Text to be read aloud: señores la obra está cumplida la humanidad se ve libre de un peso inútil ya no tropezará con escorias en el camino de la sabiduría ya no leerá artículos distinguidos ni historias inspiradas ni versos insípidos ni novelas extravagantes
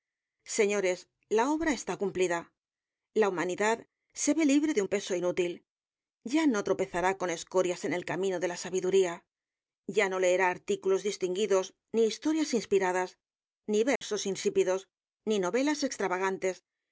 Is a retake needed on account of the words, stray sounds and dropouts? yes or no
yes